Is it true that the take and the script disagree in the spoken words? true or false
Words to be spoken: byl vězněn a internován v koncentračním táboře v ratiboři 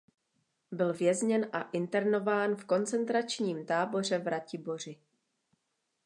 false